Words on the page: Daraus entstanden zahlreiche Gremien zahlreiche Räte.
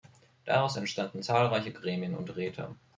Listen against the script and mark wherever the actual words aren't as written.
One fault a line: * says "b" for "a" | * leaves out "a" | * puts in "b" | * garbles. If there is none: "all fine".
* says "und" for "zahlreiche"